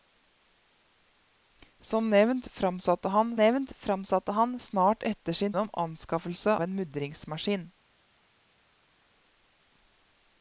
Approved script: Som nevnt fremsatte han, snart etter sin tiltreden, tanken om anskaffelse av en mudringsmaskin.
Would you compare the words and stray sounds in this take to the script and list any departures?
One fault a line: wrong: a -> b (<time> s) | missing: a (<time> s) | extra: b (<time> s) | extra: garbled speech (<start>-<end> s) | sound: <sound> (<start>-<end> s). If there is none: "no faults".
extra: nevnt fremsatte han (3.3 s)
missing: tiltreden tanken (5.5 s)
missing: av (6.6 s)